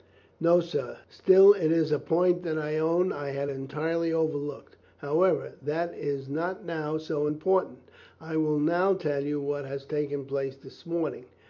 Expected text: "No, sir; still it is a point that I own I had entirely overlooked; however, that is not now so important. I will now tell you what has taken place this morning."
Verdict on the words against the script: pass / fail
pass